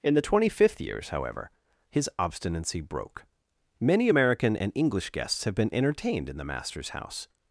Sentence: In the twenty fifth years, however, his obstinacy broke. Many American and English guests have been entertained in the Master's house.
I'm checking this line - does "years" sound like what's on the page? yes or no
yes